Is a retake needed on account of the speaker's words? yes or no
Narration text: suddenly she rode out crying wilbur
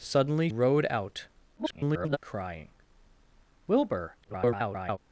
yes